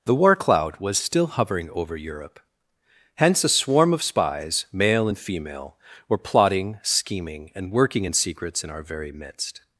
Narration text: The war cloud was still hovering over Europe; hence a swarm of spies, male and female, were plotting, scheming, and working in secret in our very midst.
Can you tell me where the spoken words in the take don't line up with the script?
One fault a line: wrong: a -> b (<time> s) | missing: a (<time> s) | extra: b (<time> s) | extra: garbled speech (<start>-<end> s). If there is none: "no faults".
wrong: secret -> secrets (8.1 s)